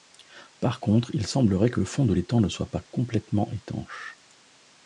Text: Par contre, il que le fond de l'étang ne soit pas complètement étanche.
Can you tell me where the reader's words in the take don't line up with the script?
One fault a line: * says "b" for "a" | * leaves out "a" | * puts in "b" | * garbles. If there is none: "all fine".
* puts in "semblerait"